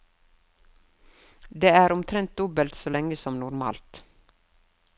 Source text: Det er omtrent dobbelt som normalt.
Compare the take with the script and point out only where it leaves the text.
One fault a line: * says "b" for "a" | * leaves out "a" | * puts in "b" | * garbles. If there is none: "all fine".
* puts in "så lenge"